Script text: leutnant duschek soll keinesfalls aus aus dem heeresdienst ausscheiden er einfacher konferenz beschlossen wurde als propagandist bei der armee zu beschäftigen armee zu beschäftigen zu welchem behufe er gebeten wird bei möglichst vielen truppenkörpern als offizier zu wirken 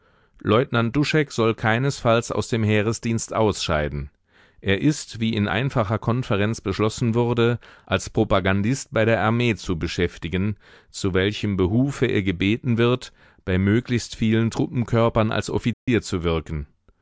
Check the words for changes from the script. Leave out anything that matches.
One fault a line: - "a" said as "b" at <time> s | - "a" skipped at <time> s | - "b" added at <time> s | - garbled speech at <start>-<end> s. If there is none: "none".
- "aus" skipped at 2.5 s
- "ist wie in" added at 4.8 s
- "armee zu beschäftigen" skipped at 10.6 s